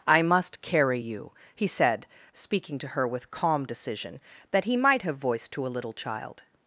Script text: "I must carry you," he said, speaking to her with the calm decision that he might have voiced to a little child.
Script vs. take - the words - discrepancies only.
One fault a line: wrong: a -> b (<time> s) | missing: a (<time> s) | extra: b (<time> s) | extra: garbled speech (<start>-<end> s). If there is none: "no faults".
missing: the (3.3 s)